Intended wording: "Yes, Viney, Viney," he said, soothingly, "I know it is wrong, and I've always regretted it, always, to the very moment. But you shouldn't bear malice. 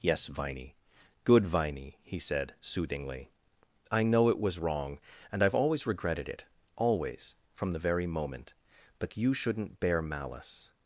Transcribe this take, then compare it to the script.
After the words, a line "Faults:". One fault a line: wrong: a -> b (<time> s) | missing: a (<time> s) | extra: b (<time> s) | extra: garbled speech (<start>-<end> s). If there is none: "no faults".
"Yes, Viney, good Viney," he said, soothingly, "I know it was wrong, and I've always regretted it, always, from the very moment. But you shouldn't bear malice.
Faults:
extra: good (1.2 s)
wrong: is -> was (4.4 s)
wrong: to -> from (7.5 s)